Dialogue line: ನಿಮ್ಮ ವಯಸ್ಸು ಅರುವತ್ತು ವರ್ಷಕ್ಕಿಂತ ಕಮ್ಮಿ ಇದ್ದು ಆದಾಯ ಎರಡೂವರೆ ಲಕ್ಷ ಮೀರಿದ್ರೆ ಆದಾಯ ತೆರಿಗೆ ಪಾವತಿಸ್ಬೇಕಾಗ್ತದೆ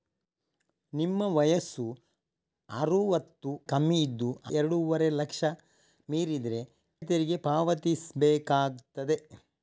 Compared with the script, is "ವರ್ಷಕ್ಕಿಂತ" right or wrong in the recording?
wrong